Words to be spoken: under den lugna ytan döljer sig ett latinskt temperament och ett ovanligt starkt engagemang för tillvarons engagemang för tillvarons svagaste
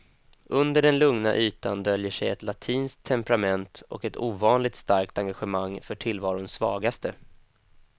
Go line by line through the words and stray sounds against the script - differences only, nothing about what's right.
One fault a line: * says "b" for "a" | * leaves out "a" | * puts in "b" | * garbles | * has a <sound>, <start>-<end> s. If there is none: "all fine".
* leaves out "engagemang för tillvarons"